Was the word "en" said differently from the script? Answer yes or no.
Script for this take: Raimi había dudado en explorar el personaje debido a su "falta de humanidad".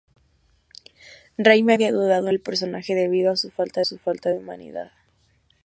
yes